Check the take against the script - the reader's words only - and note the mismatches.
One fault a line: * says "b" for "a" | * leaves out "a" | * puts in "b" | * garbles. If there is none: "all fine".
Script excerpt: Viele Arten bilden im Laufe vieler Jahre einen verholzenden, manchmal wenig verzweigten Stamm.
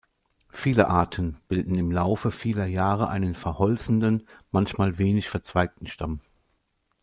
all fine